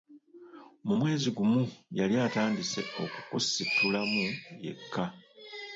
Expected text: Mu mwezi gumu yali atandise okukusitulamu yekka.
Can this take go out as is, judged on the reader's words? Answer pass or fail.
pass